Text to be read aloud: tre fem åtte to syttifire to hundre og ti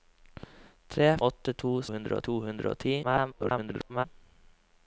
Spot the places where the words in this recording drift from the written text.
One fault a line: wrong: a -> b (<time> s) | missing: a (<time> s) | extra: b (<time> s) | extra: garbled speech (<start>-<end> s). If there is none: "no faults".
missing: fem (1.1 s)
wrong: syttifire -> hundre (1.9 s)
extra: garbled speech (3.0-4.0 s)